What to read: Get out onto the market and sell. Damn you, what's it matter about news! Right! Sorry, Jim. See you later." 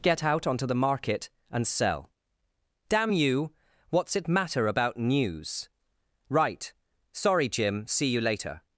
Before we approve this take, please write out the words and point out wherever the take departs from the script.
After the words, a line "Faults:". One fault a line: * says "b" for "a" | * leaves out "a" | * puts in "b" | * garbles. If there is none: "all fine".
Get out onto the market and sell. Damn you, what's it matter about news! Right! Sorry, Jim. See you later."
Faults:
all fine